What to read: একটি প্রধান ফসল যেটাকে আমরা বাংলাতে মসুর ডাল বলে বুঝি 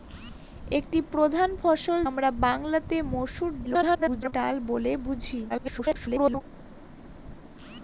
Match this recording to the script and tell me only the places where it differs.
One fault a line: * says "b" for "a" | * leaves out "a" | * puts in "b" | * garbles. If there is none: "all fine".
* leaves out "যেটাকে"
* garbles
* garbles